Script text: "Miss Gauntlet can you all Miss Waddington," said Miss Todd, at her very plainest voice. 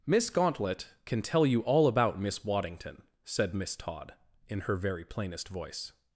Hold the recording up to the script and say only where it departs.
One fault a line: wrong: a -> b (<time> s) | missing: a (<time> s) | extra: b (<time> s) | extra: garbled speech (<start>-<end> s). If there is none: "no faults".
extra: tell (1.2 s)
extra: about (1.9 s)
wrong: at -> in (4.5 s)